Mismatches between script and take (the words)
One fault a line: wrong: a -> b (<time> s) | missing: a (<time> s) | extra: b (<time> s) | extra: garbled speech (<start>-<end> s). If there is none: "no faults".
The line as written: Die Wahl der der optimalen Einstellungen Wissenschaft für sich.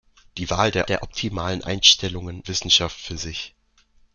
no faults